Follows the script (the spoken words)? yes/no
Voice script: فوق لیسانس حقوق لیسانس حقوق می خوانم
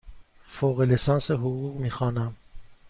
no